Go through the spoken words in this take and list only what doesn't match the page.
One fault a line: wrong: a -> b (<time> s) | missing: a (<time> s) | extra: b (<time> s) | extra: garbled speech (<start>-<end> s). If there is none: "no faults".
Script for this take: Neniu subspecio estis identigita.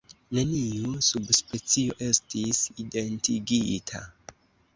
no faults